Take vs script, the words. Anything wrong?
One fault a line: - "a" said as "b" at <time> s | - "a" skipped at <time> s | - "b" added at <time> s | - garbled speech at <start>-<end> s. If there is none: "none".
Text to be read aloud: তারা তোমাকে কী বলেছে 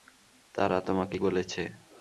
- "কী" skipped at 1.2 s